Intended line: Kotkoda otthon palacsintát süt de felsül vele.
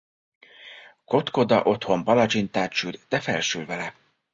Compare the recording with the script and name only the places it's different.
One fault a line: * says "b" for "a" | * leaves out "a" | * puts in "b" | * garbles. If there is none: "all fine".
all fine